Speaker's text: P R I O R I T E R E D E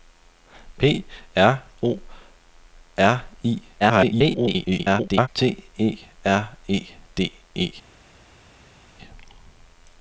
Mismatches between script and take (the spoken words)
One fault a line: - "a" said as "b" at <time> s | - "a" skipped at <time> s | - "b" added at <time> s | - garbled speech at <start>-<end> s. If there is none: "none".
- "I" skipped at 1.6 s
- garbled speech at 3.8-5.3 s